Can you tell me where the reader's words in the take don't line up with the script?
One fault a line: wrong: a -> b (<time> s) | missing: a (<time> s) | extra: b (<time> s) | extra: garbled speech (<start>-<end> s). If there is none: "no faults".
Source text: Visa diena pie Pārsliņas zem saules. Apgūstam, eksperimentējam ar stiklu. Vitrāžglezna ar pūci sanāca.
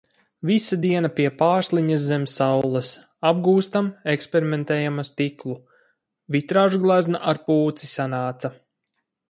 no faults